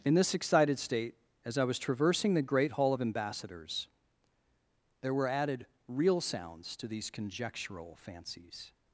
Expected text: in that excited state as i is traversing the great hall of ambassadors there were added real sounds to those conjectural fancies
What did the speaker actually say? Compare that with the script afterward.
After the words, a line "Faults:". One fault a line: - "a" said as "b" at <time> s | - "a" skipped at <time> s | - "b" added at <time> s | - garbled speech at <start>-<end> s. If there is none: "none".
in this excited state as i was traversing the great hall of ambassadors there were added real sounds to these conjectural fancies
Faults:
- "that" said as "this" at 0.1 s
- "is" said as "was" at 1.6 s
- "those" said as "these" at 6.9 s